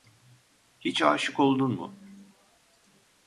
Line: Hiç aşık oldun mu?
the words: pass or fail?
pass